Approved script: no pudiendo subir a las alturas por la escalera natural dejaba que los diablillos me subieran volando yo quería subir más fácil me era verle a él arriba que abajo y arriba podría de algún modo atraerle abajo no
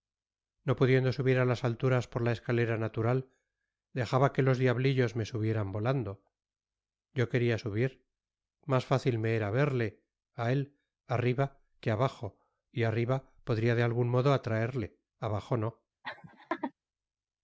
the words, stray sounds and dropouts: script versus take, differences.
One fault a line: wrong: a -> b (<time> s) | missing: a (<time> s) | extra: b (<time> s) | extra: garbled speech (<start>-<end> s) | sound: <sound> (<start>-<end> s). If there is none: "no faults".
sound: laugh (16.0-16.7 s)